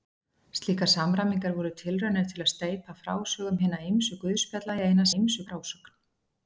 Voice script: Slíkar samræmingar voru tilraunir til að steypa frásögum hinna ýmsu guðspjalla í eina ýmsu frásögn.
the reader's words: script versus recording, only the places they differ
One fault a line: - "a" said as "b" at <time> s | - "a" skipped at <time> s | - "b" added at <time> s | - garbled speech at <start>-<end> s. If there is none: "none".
none